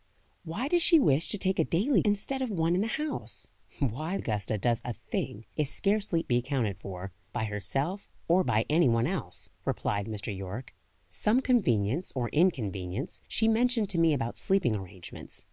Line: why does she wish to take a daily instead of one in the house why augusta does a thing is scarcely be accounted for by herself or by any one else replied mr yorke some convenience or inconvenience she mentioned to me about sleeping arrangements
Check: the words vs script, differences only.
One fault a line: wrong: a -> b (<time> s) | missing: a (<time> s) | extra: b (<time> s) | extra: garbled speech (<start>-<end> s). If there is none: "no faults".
no faults